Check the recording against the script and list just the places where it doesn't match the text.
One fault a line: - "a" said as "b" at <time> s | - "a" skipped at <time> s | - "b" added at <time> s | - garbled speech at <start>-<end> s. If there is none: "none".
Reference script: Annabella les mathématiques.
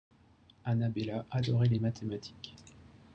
- "adorait" added at 1.3 s